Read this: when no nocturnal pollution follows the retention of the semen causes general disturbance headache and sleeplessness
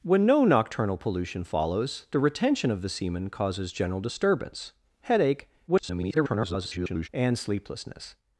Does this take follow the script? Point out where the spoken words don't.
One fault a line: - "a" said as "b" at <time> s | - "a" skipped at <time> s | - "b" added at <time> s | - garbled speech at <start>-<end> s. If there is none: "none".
- garbled speech at 5.7-7.1 s